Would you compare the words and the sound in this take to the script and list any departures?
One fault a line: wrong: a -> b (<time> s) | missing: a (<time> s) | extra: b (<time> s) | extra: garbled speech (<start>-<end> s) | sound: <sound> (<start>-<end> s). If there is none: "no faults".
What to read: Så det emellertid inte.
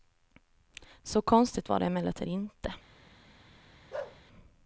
extra: konstigt var (1.2 s)
sound: bark (3.9-4.2 s)